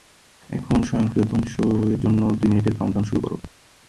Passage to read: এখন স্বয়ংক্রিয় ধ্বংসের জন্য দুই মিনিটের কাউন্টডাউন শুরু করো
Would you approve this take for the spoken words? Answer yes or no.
yes